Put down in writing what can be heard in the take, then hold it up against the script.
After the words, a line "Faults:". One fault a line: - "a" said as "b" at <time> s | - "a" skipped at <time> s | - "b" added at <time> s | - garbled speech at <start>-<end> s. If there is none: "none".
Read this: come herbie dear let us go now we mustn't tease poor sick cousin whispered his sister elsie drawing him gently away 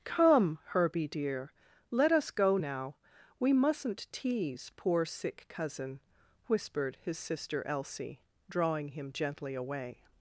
come herbie dear let us go now we mustn't tease poor sick cousin whispered his sister elsie drawing him gently away
Faults:
none